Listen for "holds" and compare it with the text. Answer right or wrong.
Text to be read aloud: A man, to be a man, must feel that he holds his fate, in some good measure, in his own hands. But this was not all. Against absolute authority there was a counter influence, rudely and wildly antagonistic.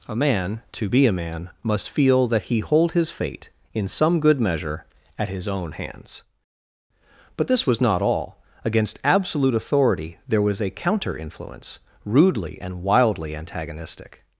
wrong